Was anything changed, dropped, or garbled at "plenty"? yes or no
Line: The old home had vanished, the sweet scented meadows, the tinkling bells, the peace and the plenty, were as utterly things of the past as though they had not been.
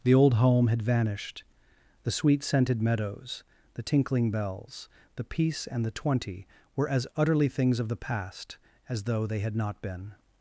yes